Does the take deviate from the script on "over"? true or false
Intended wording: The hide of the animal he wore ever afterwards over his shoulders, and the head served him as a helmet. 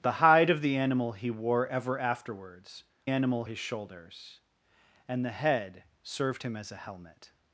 true